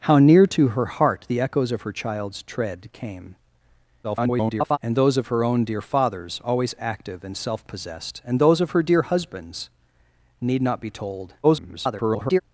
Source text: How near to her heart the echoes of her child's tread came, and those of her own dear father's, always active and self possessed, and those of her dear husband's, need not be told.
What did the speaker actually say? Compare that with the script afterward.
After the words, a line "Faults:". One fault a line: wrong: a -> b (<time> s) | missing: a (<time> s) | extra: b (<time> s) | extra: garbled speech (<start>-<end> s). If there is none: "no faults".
How near to her heart the echoes of her child's tread came, [garbled] and those of her own dear father's, always active and self possessed, and those of her dear husband's, need not be told. [garbled]
Faults:
extra: garbled speech (4.0-4.8 s)
extra: garbled speech (11.4-12.4 s)